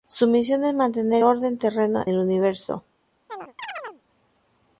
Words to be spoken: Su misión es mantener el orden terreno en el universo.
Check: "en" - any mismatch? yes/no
yes